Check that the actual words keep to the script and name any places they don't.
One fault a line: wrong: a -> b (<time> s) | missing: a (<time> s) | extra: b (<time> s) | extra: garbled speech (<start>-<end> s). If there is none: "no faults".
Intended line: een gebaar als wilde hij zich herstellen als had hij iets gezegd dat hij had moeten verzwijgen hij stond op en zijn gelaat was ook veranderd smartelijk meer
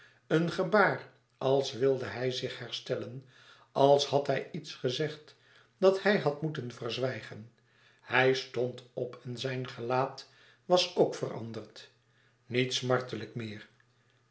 extra: niet (12.5 s)